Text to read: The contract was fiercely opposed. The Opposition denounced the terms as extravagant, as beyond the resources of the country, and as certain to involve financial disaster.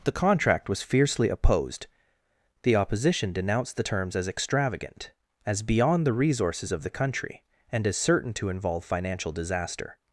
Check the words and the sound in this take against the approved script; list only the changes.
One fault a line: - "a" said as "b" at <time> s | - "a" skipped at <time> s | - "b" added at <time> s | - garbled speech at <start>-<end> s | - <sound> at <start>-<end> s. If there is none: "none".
none